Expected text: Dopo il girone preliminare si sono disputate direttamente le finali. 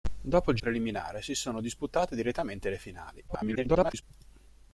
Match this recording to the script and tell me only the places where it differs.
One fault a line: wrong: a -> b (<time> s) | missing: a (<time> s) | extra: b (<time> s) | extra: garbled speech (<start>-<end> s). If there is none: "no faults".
missing: girone (0.6 s)
extra: garbled speech (3.3-4.0 s)